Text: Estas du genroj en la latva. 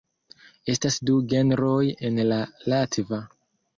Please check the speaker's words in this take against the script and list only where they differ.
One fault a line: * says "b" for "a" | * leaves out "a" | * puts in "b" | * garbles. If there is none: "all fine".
all fine